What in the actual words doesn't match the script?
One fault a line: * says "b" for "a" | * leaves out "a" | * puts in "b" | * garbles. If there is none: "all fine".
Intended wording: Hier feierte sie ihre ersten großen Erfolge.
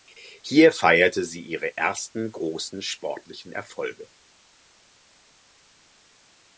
* puts in "sportlichen"